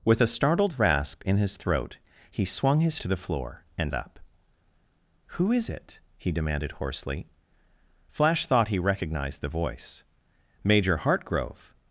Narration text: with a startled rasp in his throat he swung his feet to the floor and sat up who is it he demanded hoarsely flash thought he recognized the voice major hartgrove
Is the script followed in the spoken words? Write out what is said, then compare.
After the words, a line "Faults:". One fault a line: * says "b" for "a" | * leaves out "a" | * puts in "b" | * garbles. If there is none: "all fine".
with a startled rasp in his throat he swung his to the floor and up who is it he demanded hoarsely flash thought he recognized the voice major hartgrove
Faults:
* leaves out "feet"
* leaves out "sat"